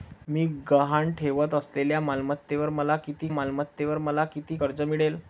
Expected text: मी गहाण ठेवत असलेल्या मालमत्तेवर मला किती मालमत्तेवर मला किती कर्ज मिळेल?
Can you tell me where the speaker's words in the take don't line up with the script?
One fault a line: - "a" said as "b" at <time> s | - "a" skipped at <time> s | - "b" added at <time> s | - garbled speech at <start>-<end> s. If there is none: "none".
none